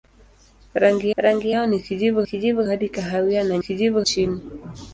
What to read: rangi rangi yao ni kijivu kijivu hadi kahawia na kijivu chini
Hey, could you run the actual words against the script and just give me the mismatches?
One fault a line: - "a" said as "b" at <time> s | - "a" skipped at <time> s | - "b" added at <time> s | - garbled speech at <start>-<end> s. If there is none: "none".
none